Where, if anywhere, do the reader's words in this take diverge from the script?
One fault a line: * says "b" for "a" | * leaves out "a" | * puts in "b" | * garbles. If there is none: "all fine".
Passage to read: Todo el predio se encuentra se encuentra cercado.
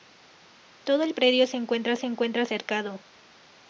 all fine